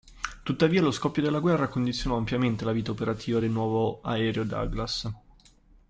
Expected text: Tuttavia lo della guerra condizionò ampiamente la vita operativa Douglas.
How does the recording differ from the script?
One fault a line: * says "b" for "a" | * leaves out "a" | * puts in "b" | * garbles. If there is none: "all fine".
* puts in "scoppio"
* puts in "del nuovo aereo"